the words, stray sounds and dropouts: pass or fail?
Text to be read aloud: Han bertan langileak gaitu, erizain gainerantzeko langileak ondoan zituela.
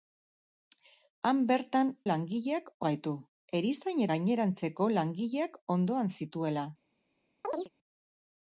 fail